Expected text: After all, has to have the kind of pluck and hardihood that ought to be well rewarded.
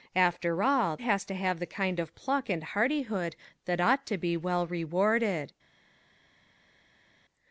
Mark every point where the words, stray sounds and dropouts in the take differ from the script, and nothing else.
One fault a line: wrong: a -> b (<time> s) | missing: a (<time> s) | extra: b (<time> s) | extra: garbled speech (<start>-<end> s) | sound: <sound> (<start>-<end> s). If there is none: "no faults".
no faults